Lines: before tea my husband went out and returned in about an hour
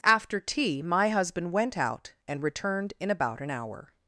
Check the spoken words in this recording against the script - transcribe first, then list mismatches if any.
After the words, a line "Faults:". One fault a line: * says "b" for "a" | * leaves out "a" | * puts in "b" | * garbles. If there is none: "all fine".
after tea my husband went out and returned in about an hour
Faults:
* says "after" for "before"